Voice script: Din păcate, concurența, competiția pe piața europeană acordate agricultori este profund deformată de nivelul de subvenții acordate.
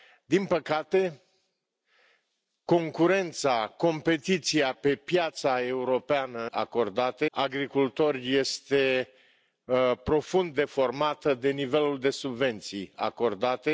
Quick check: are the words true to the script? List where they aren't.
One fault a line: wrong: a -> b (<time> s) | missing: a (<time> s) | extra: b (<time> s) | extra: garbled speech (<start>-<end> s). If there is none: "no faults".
no faults